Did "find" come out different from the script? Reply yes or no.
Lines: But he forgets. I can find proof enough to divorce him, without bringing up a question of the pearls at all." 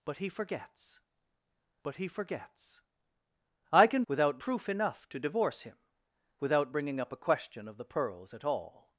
yes